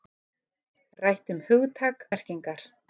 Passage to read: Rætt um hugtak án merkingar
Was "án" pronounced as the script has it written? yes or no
no